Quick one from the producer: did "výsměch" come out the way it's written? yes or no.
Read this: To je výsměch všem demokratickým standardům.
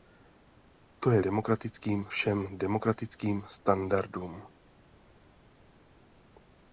no